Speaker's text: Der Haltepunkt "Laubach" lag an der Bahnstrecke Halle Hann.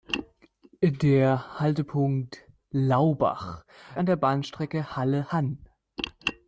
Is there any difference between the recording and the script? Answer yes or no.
yes